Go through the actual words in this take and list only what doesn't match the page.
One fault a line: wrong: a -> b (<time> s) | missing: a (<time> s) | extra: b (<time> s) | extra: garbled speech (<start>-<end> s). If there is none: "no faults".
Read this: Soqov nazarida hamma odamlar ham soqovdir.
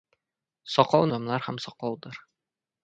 missing: nazarida hamma (1.1 s)